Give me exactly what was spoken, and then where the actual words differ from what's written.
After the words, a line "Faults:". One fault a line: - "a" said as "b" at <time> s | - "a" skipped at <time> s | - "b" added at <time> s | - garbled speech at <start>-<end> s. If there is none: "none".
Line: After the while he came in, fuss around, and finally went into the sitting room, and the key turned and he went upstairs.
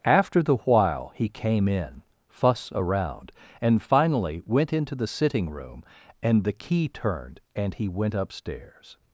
After the while he came in, fuss around, and finally went into the sitting room, and the key turned and he went upstairs.
Faults:
none